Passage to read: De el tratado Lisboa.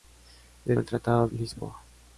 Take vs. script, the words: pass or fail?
pass